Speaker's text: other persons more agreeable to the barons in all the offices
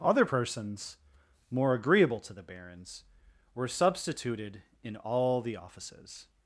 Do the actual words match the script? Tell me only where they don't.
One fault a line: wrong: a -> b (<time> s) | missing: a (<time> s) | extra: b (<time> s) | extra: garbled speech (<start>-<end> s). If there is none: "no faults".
extra: were substituted (3.5 s)